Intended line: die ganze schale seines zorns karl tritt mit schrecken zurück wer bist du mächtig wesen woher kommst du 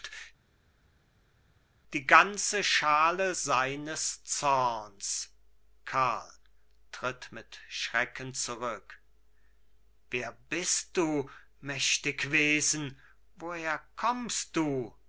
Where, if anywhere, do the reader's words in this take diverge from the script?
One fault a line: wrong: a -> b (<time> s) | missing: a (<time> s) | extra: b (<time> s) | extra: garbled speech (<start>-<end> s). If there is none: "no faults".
no faults